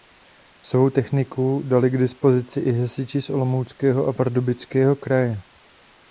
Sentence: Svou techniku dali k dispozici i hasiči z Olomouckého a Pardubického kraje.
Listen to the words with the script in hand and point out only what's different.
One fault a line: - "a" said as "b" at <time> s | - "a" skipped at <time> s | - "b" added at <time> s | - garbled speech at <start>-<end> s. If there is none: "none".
none